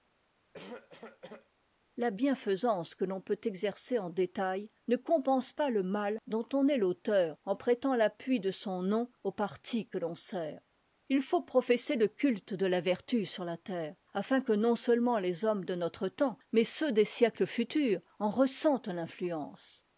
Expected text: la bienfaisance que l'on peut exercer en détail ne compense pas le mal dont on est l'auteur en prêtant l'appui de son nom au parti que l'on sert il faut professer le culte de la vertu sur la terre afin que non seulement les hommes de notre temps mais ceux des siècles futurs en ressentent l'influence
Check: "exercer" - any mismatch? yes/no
no